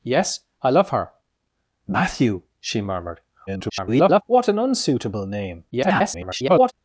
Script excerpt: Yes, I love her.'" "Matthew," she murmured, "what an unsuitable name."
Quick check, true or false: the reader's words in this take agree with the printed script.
false